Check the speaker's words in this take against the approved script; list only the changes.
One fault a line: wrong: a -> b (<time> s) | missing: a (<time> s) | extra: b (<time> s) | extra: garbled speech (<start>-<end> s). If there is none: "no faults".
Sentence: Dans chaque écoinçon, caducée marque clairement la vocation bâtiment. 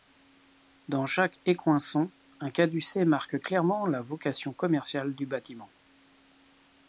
extra: un (2.4 s)
extra: commerciale du (4.5 s)